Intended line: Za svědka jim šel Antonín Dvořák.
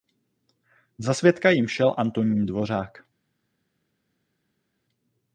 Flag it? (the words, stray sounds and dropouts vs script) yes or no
no